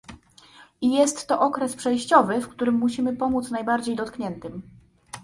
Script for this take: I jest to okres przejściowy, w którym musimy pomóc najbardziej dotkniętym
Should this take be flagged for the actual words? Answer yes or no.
no